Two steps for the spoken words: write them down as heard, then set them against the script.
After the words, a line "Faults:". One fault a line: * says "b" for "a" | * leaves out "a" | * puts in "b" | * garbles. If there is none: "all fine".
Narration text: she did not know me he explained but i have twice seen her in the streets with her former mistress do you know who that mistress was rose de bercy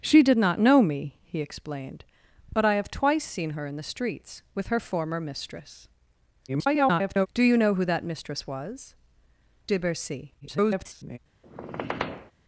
she did not know me he explained but i have twice seen her in the streets with her former mistress [garbled] do you know who that mistress was de bercy [garbled]
Faults:
* garbles
* leaves out "rose"
* garbles